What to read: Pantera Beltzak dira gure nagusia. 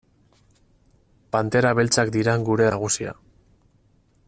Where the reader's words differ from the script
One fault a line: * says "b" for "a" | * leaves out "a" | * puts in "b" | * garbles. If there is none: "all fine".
all fine